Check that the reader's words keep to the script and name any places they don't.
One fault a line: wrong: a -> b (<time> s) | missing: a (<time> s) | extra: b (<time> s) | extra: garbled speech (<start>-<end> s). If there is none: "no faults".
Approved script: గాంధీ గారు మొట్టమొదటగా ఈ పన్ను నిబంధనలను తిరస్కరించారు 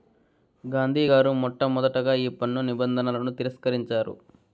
no faults